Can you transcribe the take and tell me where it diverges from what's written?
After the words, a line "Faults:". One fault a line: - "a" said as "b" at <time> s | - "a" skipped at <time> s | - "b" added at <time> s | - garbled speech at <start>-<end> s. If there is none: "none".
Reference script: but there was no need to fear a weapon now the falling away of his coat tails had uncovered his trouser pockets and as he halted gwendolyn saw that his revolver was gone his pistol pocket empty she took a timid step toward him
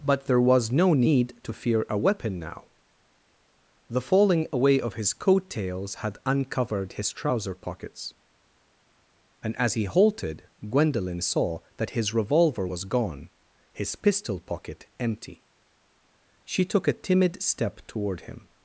but there was no need to fear a weapon now the falling away of his coat tails had uncovered his trouser pockets and as he halted gwendolyn saw that his revolver was gone his pistol pocket empty she took a timid step toward him
Faults:
none